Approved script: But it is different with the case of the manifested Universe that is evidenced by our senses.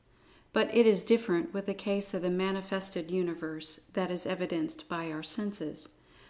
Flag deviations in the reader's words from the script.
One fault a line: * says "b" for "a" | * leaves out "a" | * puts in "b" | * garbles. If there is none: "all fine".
all fine